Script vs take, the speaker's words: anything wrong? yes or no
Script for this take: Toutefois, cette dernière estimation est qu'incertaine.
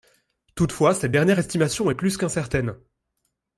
yes